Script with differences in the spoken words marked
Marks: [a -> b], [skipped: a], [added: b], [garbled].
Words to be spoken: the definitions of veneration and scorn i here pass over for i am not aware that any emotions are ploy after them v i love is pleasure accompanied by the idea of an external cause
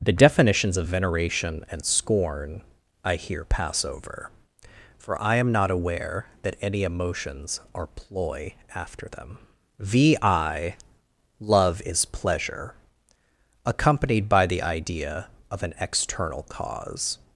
the definitions of veneration and scorn i here pass over for i am not aware that any emotions are ploy after them v i love is pleasure accompanied by the idea of an external cause